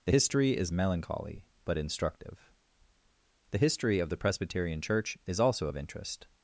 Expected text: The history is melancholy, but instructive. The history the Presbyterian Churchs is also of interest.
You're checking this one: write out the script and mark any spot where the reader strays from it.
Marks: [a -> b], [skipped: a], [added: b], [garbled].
The history is melancholy, but instructive. The history [added: of] the Presbyterian [Churchs -> Church] is also of interest.